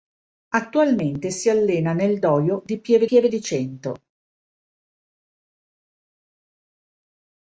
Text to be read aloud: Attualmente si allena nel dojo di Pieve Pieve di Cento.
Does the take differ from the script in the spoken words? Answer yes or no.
no